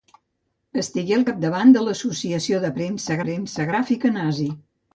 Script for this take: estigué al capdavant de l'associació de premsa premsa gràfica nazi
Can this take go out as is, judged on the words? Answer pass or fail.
pass